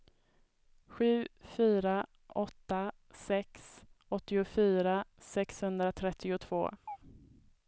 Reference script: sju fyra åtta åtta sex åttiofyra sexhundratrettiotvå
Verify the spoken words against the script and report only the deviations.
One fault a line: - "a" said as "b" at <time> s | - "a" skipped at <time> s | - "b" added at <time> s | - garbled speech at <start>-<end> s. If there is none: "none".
- "åtta" skipped at 2.9 s